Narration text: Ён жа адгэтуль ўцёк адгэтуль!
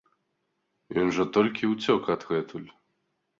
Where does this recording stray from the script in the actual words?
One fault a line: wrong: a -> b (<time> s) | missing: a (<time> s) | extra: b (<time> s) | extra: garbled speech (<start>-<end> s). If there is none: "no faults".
wrong: адгэтуль -> толькі (1.4 s)